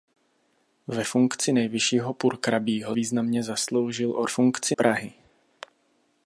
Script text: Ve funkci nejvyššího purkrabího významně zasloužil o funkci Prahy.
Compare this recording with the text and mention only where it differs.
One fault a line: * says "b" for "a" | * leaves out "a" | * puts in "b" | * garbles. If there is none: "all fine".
all fine